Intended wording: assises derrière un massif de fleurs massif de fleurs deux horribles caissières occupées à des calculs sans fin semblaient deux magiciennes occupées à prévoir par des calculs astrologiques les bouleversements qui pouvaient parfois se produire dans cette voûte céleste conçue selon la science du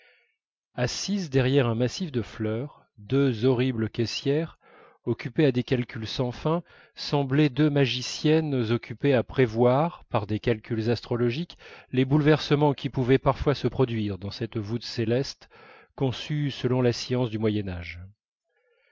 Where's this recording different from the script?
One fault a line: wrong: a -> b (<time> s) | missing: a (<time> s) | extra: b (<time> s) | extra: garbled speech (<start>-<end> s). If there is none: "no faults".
missing: massif de fleurs (2.9 s)